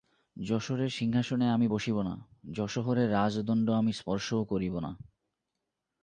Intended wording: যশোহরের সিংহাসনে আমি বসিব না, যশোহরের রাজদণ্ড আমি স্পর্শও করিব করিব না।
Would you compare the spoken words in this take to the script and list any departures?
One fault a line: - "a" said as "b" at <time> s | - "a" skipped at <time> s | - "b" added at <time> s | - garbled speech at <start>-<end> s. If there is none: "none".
- "করিব" skipped at 4.8 s